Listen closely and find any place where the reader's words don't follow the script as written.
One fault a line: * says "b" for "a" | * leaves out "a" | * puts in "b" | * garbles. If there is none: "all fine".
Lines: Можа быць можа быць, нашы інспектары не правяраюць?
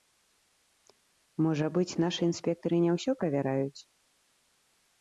* leaves out "можа быць"
* puts in "ўсё"